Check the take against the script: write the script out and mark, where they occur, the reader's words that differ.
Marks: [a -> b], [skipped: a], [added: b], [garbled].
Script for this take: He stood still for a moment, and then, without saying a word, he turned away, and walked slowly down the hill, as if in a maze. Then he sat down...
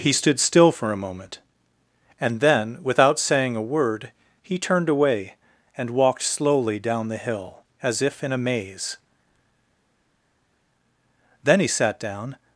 He stood still for a moment, and then, without saying a word, he turned away, and walked slowly down the hill, as if in a maze. Then he sat down...